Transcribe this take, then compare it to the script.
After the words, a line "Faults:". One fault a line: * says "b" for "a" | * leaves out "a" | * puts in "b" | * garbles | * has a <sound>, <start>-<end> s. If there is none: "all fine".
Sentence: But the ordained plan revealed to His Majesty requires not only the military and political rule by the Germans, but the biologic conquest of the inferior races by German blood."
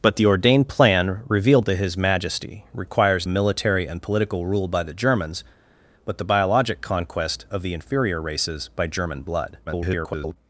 But the ordained plan revealed to His Majesty requires military and political rule by the Germans, but the biologic conquest of the inferior races by German blood." [garbled]
Faults:
* leaves out "not only the"
* garbles